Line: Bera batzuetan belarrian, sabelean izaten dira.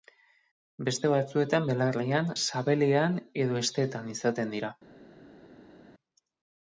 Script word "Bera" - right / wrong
wrong